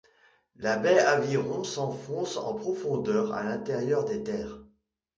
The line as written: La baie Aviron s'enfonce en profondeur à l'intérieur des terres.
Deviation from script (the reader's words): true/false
false